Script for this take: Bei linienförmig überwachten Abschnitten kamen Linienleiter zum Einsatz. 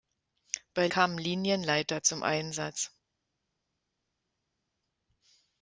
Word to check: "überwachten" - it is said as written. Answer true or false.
false